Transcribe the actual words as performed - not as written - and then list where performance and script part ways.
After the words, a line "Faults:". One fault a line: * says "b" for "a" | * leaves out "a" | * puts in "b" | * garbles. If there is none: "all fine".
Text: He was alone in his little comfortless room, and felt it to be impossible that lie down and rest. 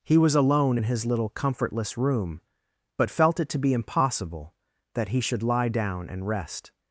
He was alone in his little comfortless room, but felt it to be impossible that he should lie down and rest.
Faults:
* says "but" for "and"
* puts in "he should"